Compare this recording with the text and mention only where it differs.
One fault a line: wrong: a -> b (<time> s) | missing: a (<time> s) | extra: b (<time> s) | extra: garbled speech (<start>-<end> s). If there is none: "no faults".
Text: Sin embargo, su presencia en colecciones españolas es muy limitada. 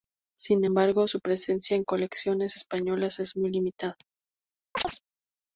no faults